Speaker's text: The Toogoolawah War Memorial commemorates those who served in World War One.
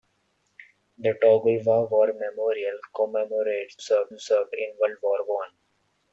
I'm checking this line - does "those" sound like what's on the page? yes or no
no